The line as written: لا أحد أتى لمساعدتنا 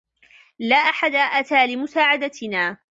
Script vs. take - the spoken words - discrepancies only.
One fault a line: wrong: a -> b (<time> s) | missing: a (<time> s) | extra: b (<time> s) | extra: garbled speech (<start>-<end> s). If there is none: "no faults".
no faults